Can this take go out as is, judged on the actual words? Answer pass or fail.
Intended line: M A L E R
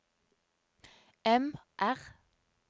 fail